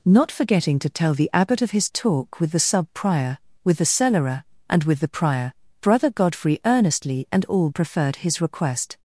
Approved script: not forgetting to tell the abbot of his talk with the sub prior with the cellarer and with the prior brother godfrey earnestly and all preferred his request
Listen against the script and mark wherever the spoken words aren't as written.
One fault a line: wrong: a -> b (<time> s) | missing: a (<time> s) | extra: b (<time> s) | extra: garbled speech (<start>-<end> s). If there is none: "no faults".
no faults